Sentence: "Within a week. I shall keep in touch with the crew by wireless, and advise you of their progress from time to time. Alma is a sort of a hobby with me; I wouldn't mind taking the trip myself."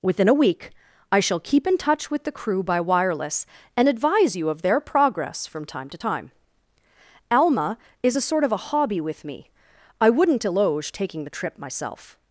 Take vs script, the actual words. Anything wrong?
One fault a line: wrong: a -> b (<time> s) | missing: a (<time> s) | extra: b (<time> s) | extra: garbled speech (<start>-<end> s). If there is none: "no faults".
wrong: mind -> eloge (10.4 s)